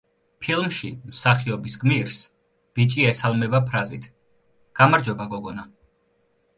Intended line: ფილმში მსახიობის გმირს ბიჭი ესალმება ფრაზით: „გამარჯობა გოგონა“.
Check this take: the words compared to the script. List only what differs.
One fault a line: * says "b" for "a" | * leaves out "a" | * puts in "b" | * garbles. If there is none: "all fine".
all fine